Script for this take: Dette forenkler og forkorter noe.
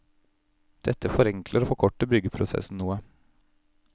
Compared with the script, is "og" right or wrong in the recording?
right